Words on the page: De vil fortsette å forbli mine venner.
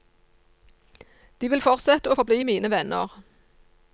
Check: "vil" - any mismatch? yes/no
no